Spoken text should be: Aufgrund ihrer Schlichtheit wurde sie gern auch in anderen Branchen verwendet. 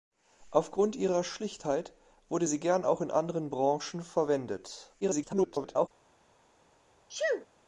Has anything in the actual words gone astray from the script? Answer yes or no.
yes